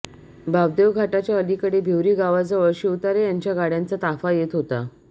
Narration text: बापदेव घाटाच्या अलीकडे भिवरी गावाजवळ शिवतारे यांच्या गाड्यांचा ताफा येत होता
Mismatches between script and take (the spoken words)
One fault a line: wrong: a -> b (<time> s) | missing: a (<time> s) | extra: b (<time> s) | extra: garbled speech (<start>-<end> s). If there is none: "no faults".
no faults